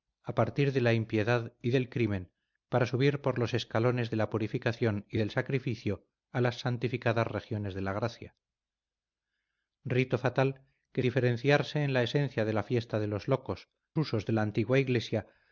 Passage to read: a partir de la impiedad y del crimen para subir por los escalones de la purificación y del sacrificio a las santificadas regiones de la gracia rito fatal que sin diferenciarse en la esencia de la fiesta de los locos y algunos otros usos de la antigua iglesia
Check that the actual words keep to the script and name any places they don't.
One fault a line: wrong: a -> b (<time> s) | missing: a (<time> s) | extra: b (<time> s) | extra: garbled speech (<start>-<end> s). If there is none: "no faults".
missing: sin (11.0 s)
missing: y algunos otros (13.7 s)